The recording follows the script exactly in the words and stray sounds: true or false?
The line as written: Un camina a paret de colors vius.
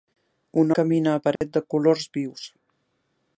false